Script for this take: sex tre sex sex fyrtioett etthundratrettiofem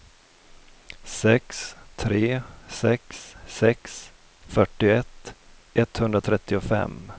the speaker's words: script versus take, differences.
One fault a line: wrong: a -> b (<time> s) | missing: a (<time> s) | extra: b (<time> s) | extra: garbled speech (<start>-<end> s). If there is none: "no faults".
no faults